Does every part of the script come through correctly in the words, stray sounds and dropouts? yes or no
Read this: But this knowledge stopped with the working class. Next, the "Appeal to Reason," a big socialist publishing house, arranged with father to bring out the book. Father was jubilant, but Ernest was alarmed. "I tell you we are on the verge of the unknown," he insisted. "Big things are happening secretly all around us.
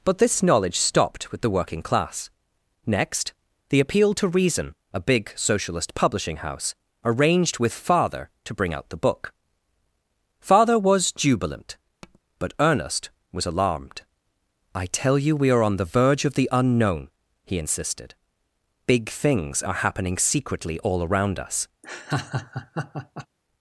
no